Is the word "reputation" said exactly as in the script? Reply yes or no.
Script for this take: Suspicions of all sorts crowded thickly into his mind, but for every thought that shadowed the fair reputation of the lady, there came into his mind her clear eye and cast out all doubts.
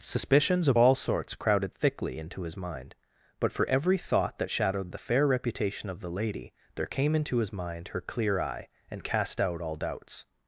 yes